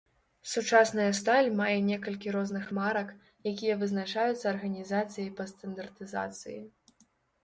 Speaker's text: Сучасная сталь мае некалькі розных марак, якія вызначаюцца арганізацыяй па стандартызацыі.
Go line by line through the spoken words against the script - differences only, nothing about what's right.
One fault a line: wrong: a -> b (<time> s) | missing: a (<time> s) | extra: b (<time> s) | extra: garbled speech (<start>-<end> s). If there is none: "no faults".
no faults